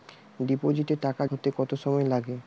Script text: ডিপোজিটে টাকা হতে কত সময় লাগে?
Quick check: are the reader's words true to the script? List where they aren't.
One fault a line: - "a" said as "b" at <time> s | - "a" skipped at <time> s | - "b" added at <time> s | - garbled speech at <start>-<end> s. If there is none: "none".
none